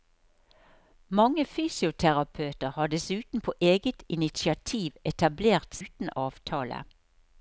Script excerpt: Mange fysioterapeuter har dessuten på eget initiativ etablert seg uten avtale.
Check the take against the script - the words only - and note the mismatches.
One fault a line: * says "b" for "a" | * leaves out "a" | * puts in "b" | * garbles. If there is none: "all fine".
* leaves out "seg"